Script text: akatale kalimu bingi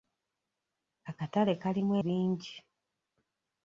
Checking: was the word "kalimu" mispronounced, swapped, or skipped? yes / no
no